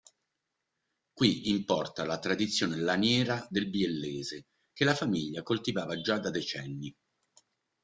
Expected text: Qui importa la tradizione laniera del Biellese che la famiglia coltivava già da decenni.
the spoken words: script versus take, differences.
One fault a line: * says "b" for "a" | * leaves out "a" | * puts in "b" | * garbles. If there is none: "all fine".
all fine